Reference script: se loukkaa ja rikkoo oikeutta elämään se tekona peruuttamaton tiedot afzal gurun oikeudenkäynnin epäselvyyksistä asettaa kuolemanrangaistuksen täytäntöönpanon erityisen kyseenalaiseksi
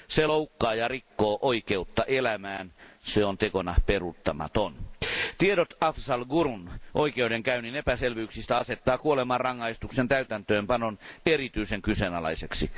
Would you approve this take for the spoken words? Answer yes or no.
no